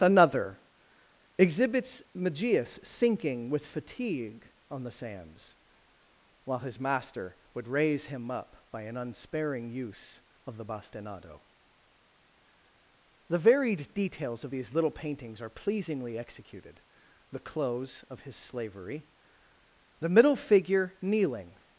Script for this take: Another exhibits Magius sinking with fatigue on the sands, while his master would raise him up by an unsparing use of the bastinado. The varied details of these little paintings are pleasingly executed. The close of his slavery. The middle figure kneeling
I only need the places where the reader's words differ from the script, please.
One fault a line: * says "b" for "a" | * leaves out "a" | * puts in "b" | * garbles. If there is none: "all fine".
all fine